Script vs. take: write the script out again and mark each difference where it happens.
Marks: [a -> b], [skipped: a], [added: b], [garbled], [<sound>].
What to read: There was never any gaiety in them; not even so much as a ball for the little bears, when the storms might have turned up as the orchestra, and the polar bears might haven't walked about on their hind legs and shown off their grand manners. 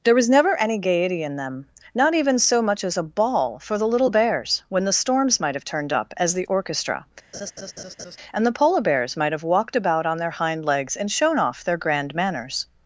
There was never any gaiety in them; not even so much as a ball for the little bears, when the storms might have turned up as the orchestra, [laugh] and the polar bears might [haven't -> have] walked about on their hind legs and shown off their grand manners.